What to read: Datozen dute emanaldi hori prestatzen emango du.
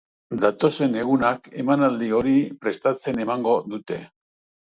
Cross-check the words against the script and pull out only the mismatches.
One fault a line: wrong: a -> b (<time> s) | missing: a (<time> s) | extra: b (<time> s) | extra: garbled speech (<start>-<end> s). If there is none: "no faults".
wrong: dute -> egunak (1.0 s)
wrong: du -> dute (3.7 s)